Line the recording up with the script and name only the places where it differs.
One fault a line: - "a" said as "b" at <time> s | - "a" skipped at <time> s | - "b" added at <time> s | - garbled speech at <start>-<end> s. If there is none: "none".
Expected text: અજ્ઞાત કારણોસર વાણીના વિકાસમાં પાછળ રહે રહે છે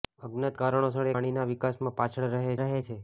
none